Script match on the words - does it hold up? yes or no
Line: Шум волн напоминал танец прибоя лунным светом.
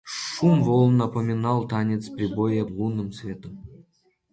yes